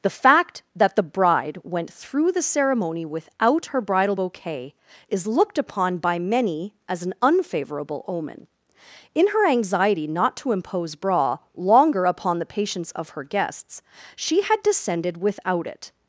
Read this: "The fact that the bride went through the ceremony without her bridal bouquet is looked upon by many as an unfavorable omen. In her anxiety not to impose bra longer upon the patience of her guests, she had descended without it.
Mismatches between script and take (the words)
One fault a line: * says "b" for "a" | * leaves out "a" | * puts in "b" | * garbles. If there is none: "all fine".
all fine